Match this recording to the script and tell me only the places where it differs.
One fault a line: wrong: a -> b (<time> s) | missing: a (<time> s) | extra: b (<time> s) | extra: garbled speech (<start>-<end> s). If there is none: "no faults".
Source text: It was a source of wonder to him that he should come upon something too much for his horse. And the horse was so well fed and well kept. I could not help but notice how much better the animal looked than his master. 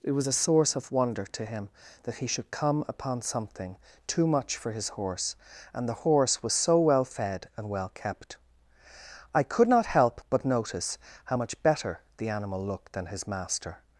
no faults